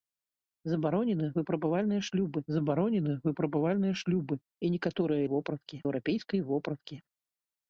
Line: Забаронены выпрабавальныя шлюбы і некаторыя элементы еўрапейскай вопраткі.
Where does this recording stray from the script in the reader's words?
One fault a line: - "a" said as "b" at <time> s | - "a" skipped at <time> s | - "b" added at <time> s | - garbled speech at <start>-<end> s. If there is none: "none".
- "забаронены выпрабавальныя шлюбы" added at 2.5 s
- "элементы" said as "вопраткі" at 5.3 s